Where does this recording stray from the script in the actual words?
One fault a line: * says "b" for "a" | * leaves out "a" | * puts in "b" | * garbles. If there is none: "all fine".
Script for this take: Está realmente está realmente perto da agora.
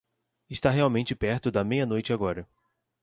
* says "perto da meia noite" for "está realmente perto da"